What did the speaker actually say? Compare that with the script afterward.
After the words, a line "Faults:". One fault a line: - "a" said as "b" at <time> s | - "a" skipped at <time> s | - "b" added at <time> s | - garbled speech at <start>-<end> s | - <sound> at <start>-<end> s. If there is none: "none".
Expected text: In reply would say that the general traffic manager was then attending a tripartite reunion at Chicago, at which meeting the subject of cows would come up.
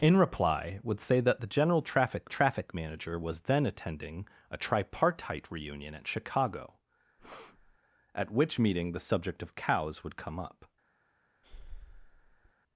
In reply would say that the general traffic traffic manager was then attending a tripartite reunion at Chicago, at which meeting the subject of cows would come up.
Faults:
- "traffic" added at 2.3 s
- breath at 7.2-7.8 s
- breath at 11.4-12.5 s